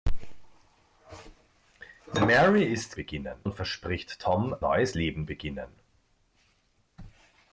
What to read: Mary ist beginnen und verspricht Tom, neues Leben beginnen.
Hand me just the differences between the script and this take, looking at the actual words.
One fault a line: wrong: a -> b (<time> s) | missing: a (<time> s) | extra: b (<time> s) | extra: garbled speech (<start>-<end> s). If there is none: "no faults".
no faults